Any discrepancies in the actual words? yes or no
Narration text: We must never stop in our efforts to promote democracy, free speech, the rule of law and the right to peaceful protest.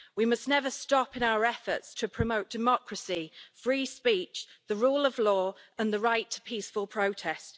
no